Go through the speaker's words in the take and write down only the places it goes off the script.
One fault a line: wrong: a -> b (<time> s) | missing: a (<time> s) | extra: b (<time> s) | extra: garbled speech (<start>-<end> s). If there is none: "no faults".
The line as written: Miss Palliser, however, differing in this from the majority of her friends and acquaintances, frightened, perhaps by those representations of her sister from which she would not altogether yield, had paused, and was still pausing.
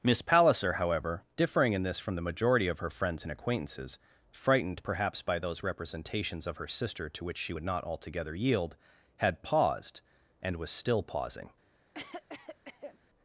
wrong: from -> to (7.1 s)